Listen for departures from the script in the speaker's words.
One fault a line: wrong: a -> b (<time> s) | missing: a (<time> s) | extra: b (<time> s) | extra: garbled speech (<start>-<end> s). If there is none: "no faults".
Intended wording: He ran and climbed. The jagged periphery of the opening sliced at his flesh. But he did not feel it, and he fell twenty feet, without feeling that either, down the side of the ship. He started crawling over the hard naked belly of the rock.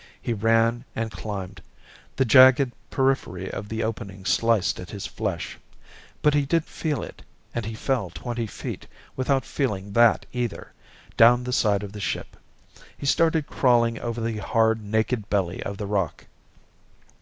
missing: not (6.7 s)